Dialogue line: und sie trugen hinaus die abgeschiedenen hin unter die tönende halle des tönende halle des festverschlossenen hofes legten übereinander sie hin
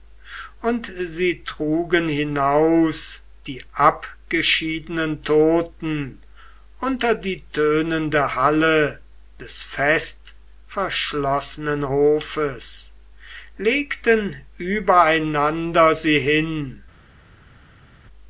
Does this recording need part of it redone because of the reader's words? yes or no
yes